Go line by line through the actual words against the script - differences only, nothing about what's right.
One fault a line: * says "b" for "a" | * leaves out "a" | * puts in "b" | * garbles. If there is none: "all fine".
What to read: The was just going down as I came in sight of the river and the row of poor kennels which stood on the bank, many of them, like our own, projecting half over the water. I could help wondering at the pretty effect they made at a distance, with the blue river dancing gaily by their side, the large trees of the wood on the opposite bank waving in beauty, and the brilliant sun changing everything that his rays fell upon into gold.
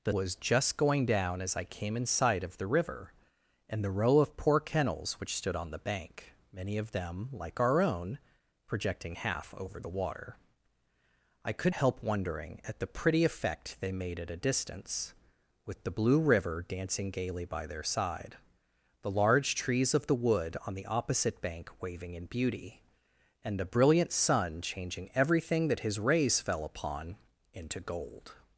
all fine